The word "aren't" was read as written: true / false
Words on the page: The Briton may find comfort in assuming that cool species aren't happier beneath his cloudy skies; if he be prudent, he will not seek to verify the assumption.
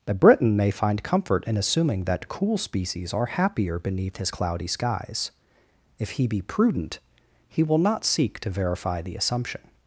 false